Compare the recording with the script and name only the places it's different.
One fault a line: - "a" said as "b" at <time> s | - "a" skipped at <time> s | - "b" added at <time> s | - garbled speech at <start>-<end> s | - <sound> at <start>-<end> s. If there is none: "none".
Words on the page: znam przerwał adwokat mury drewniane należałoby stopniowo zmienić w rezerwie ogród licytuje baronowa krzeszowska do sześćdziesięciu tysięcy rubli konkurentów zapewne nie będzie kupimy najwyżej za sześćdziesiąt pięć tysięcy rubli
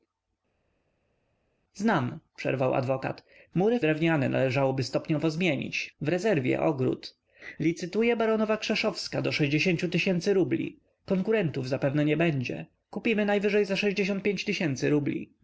none